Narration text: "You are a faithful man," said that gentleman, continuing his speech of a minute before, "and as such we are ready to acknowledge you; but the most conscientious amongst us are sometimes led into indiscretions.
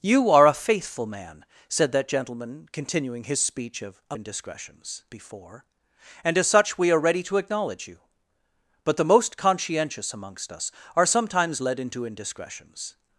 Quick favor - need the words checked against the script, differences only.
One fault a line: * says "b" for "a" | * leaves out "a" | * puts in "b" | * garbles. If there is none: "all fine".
* says "indiscretions" for "minute"